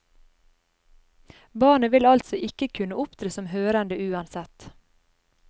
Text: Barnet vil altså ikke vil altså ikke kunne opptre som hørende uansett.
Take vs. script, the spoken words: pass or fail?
fail